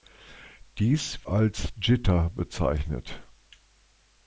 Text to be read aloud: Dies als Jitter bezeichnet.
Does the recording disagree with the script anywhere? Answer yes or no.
no